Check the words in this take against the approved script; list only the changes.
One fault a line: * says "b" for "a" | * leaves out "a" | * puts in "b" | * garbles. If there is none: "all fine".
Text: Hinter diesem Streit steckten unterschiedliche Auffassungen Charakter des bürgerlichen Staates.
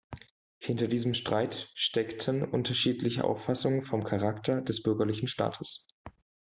* puts in "vom"